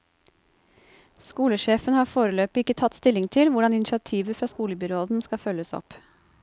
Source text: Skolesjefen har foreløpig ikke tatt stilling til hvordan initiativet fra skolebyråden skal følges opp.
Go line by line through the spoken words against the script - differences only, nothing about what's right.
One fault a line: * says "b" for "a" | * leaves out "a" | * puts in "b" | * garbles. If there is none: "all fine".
all fine